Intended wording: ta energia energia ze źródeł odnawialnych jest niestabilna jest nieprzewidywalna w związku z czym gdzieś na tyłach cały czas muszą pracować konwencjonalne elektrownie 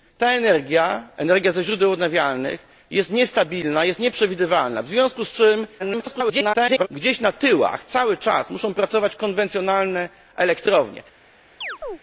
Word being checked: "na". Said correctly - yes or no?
yes